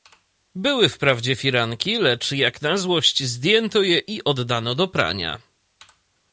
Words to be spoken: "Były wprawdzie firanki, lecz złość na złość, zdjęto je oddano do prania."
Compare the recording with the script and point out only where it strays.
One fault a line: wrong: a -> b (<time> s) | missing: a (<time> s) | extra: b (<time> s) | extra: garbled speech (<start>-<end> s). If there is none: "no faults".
wrong: złość -> jak (2.3 s)
extra: i (4.0 s)